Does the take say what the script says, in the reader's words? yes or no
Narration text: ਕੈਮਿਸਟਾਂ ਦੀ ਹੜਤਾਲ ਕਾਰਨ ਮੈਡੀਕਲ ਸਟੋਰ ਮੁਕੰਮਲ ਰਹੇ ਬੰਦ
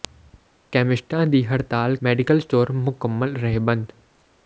no